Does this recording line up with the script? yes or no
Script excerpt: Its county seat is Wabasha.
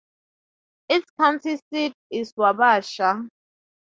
yes